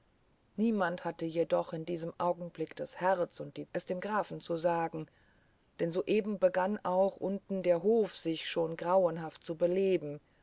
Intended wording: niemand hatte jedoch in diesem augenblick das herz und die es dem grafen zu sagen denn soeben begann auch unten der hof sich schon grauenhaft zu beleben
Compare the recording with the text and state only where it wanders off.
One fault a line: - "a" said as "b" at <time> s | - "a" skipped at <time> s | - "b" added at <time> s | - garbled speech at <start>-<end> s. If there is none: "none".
none